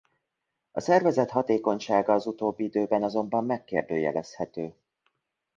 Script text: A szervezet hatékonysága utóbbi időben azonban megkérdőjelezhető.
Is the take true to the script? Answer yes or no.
no